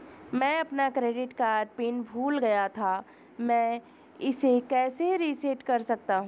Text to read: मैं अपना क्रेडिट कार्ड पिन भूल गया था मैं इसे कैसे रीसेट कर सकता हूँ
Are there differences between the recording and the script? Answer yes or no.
no